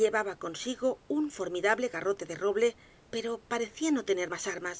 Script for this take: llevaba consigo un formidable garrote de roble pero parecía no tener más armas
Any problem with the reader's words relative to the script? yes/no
no